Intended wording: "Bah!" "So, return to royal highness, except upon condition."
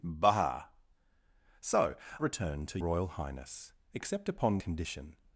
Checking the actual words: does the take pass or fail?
pass